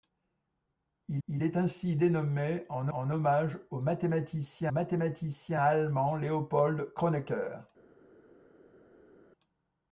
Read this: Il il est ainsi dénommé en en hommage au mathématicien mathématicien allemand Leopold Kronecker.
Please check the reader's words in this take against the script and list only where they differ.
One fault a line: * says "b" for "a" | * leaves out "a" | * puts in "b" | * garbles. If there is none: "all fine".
all fine